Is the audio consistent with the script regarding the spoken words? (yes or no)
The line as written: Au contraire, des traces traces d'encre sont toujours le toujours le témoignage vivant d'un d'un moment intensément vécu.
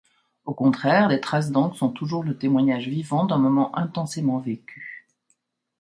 no